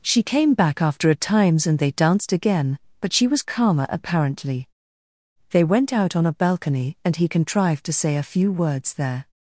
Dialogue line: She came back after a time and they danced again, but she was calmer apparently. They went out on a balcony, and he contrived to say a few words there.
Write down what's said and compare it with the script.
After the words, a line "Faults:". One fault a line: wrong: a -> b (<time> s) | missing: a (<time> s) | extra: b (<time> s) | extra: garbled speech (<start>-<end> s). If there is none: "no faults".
She came back after a times and they danced again, but she was calmer apparently. They went out on a balcony, and he contrived to say a few words there.
Faults:
wrong: time -> times (1.1 s)